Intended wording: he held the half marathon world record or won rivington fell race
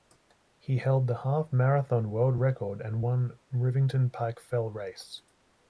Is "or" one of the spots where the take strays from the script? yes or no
yes